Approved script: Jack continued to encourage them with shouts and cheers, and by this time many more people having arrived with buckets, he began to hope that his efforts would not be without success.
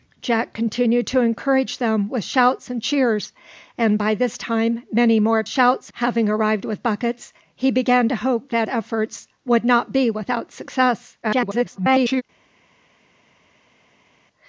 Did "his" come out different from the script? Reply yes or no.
yes